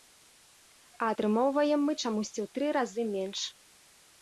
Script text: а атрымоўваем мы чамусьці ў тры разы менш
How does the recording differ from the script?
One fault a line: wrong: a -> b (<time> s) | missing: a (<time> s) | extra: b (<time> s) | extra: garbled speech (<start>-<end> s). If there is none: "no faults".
no faults